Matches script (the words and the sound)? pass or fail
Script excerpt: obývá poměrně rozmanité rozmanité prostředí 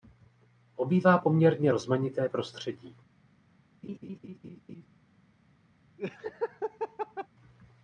fail